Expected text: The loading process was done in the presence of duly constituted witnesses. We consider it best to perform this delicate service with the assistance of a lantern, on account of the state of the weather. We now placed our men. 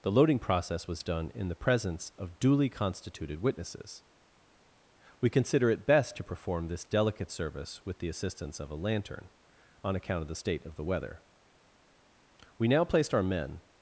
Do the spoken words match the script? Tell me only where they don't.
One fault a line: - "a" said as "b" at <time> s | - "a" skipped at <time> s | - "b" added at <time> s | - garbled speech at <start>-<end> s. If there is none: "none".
none